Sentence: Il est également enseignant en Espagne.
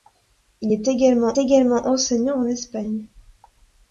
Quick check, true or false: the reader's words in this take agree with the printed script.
false